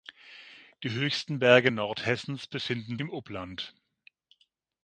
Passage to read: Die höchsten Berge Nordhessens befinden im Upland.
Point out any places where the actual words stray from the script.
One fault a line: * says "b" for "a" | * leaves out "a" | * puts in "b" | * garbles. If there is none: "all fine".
all fine